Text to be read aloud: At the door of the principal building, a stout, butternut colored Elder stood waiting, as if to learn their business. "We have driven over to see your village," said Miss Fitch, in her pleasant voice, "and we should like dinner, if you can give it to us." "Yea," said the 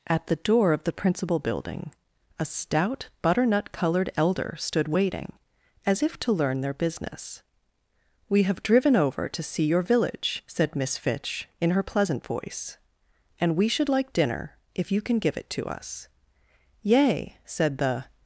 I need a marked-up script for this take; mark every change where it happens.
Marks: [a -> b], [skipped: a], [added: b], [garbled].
At the door of the principal building, a stout, butternut colored Elder stood waiting, as if to learn their business. "We have driven over to see your village," said Miss Fitch, in her pleasant voice, "and we should like dinner, if you can give it to us." "Yea," said the